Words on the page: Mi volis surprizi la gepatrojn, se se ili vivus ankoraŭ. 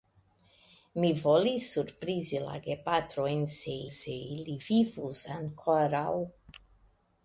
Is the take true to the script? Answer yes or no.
yes